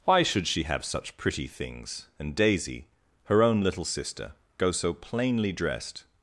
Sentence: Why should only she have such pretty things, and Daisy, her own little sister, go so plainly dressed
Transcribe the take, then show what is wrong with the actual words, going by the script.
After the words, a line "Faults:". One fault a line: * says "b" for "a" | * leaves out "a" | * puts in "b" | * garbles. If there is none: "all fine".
Why should she have such pretty things, and Daisy, her own little sister, go so plainly dressed
Faults:
* leaves out "only"